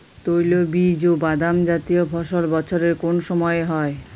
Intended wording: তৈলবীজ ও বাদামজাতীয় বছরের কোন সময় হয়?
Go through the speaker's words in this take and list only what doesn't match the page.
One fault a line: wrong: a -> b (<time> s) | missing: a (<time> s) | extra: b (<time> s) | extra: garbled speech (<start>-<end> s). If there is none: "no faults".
extra: ফসল (2.0 s)